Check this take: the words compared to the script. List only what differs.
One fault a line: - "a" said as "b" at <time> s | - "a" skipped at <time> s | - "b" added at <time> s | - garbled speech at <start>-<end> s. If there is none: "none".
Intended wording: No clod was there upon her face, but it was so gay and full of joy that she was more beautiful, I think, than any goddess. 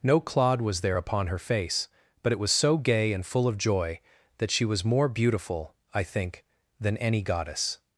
none